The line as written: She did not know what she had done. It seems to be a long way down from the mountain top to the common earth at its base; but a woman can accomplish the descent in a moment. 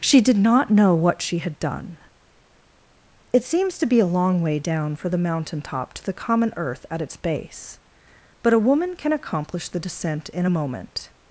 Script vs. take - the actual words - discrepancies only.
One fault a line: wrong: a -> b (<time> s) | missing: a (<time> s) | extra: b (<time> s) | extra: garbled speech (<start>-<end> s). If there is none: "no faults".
wrong: from -> for (5.0 s)